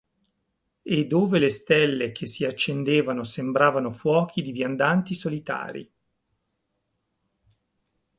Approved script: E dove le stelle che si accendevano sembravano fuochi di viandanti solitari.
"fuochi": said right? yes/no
yes